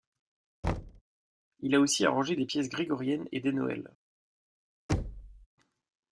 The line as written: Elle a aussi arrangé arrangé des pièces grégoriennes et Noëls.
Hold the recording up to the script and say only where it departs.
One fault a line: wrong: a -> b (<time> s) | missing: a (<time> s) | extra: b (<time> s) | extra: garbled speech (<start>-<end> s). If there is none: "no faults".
wrong: Elle -> Il (1.6 s)
missing: arrangé (2.4 s)
extra: des (3.4 s)